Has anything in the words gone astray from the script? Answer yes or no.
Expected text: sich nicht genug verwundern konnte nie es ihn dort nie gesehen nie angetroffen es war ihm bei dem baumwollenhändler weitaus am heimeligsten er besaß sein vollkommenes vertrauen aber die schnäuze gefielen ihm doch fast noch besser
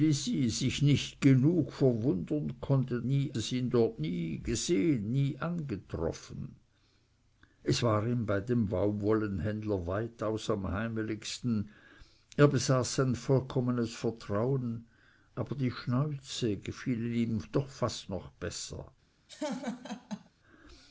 no